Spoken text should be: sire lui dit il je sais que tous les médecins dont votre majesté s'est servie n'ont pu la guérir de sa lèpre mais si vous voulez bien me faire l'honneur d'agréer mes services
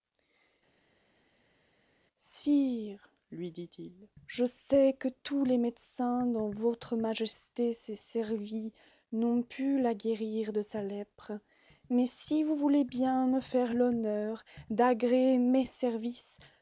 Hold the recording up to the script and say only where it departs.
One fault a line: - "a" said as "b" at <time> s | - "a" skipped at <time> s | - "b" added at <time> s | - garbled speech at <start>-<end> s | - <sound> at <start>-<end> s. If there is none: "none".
none